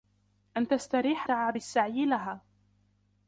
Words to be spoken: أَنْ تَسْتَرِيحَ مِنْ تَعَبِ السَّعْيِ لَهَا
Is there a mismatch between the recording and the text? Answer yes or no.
yes